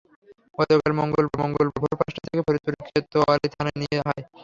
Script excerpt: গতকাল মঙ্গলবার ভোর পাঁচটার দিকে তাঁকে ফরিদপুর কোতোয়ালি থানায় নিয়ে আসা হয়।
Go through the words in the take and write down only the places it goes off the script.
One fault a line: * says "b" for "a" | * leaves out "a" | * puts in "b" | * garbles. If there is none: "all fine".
* puts in "মঙ্গলবার"
* leaves out "দিকে"
* leaves out "আসা"